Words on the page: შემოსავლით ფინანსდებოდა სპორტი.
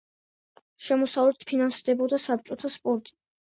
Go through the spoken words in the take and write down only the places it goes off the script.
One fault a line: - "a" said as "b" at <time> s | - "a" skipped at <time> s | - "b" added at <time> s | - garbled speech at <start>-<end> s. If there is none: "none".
- "საბჭოთა" added at 2.3 s